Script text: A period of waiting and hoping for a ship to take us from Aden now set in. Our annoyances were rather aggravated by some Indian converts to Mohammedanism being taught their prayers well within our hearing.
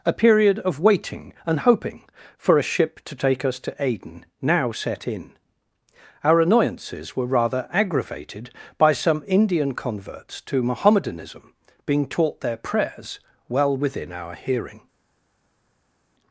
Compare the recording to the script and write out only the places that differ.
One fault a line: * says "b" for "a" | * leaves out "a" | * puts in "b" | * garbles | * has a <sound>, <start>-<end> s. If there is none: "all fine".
* says "to" for "from"